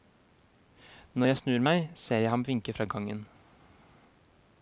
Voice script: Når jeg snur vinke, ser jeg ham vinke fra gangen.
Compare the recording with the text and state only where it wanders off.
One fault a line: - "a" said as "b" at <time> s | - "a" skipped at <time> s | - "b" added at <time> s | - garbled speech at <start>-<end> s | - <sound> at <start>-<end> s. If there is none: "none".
- "vinke" said as "meg" at 1.6 s